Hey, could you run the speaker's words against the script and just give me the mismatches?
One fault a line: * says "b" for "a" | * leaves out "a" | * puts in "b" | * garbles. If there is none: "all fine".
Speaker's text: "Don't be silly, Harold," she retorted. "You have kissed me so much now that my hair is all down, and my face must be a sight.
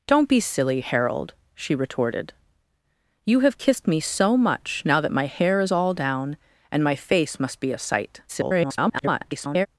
* garbles